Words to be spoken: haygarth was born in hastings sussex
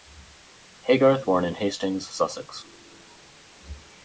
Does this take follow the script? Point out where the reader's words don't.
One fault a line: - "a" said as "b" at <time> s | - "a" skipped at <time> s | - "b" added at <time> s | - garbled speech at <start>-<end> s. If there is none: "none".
- "was" skipped at 1.3 s